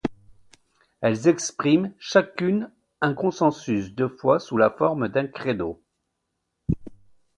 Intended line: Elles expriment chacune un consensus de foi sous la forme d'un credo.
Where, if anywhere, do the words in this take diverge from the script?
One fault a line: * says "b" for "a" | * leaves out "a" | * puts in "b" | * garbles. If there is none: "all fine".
all fine